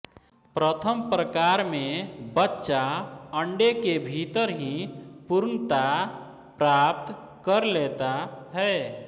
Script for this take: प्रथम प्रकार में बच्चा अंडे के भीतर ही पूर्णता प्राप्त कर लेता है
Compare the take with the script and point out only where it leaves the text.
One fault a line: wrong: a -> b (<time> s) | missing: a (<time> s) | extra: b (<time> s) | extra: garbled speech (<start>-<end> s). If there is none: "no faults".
no faults